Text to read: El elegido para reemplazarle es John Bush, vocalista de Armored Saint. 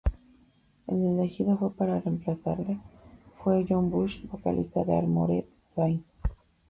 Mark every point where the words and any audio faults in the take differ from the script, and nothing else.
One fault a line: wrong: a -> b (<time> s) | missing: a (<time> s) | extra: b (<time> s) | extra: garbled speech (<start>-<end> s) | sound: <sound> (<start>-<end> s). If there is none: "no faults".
wrong: es -> fue (3.4 s)